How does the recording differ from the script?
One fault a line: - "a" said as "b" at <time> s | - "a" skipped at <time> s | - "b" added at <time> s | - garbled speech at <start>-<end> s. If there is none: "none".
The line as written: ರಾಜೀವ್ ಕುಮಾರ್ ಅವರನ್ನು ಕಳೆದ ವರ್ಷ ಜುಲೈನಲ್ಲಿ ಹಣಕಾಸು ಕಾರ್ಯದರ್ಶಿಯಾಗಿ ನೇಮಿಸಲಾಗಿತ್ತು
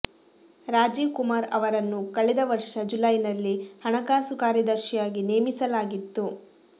none